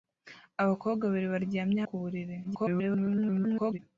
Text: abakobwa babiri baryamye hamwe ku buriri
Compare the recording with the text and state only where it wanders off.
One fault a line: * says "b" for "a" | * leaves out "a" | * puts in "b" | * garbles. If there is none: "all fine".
* leaves out "hamwe"
* garbles